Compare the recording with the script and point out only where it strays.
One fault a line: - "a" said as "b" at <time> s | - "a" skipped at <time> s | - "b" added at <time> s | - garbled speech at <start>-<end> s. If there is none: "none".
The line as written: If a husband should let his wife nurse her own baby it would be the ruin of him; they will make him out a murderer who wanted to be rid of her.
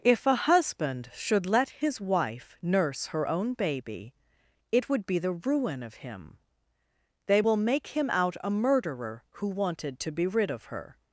none